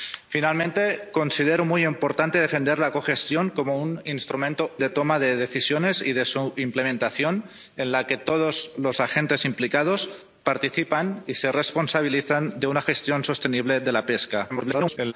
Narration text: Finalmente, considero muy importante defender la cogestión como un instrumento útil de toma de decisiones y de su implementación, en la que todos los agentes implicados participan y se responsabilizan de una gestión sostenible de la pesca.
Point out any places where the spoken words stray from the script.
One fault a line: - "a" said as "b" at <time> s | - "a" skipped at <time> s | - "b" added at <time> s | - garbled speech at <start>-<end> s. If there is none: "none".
- "útil" skipped at 4.8 s
- garbled speech at 14.5-15.1 s